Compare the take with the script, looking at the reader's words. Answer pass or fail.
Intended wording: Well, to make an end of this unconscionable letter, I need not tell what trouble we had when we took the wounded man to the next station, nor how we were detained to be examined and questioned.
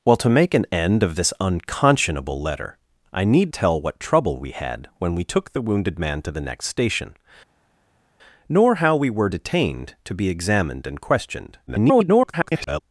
fail